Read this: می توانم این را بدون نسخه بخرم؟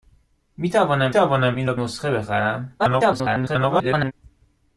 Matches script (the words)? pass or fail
fail